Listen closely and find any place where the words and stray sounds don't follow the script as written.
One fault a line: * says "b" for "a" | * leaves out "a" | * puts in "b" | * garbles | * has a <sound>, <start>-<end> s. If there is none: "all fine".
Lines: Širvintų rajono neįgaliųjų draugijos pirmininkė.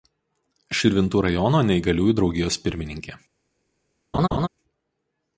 * has a laugh, 4.1-4.5 s